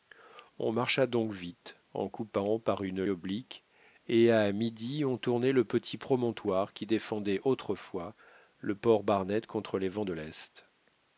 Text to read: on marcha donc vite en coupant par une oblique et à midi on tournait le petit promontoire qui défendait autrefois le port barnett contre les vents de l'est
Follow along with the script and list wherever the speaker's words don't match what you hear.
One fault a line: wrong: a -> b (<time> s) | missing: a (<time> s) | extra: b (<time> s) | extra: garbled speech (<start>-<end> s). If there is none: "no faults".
no faults